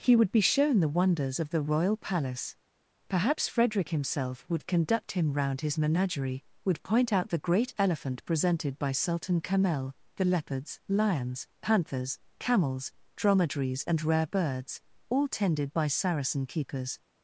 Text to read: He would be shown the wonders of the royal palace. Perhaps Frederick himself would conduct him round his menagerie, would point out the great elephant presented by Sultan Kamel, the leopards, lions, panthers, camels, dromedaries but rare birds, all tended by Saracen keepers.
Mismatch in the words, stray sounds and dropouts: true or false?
true